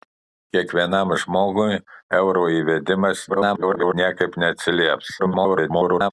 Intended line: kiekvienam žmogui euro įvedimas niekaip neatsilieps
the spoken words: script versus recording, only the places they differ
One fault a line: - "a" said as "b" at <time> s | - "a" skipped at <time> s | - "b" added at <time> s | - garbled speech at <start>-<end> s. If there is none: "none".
- garbled speech at 3.3-3.9 s
- garbled speech at 5.2-6.1 s